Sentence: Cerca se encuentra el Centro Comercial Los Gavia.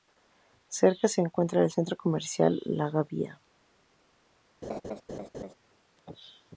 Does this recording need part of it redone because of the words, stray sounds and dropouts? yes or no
yes